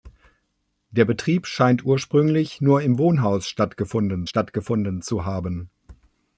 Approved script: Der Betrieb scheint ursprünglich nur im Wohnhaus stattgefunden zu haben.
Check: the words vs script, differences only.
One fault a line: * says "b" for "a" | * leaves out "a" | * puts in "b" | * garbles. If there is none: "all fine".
* puts in "stattgefunden"